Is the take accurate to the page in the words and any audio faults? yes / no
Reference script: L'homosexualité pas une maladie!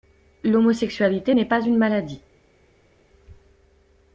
no